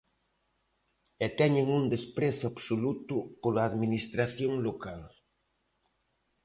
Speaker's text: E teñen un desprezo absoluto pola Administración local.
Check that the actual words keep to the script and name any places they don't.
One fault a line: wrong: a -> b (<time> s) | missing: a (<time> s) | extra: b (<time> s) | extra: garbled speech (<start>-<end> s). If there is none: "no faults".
no faults